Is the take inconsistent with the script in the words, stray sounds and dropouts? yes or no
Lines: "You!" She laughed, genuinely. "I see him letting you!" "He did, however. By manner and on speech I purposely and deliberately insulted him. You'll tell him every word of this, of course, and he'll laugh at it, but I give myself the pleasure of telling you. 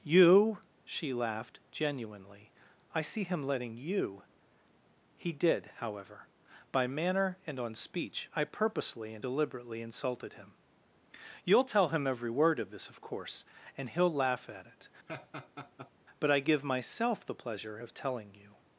yes